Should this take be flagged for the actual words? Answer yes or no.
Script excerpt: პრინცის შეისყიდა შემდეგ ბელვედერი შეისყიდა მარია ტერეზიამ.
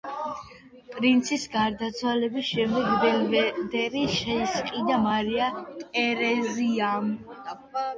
yes